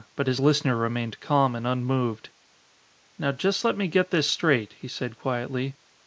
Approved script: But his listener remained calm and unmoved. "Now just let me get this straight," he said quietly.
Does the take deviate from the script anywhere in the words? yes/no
no